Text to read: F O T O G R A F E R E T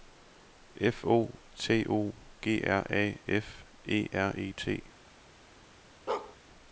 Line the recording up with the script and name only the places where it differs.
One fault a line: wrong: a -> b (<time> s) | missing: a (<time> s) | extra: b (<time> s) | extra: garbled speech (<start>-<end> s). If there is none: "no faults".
no faults